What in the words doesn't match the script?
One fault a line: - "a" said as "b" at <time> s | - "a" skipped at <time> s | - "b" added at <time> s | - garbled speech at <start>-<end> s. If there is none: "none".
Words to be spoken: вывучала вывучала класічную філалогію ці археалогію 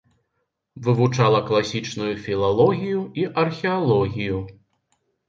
- "вывучала" skipped at 1.4 s
- "ці" said as "і" at 3.1 s